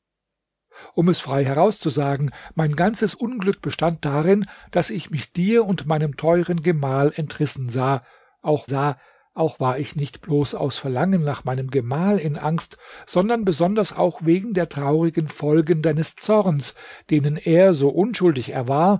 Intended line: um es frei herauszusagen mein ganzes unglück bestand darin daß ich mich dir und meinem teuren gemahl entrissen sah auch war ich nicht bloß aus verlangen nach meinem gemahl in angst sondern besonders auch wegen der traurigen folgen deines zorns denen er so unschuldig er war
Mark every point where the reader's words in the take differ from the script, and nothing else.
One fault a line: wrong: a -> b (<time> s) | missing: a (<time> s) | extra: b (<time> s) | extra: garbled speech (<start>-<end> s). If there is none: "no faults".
extra: sah auch (8.6 s)